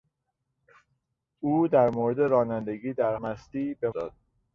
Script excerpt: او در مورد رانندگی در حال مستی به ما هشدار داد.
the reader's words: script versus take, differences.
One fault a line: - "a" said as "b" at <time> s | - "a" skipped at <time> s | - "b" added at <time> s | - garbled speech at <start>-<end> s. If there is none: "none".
- "حال" skipped at 3.1 s
- "ما هشدار" skipped at 3.9 s